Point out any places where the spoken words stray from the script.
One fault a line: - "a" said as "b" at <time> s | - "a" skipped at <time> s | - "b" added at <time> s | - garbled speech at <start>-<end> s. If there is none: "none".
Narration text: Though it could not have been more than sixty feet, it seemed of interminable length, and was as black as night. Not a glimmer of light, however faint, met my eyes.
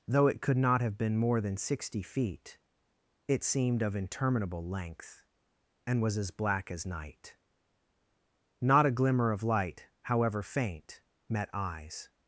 - "my" skipped at 11.5 s